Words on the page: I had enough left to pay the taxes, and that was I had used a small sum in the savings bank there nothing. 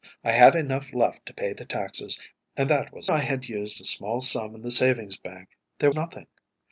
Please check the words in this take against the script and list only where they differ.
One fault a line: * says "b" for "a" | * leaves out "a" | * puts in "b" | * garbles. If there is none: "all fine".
all fine